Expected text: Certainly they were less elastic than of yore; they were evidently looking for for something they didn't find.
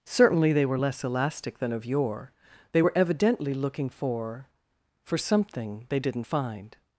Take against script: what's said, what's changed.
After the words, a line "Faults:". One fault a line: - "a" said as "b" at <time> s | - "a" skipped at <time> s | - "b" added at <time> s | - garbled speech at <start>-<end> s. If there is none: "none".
Certainly they were less elastic than of yore; they were evidently looking for for something they didn't find.
Faults:
none